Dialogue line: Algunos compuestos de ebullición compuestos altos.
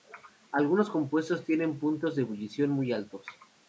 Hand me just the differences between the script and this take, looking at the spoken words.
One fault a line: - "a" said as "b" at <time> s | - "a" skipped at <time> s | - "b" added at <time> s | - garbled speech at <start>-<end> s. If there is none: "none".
- "tienen puntos" added at 1.4 s
- "compuestos" said as "muy" at 2.7 s